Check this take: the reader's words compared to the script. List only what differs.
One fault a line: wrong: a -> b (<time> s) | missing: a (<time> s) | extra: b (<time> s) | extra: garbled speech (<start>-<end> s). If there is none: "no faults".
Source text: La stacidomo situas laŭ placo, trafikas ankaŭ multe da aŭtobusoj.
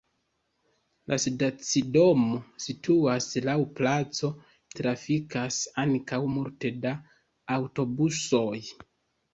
no faults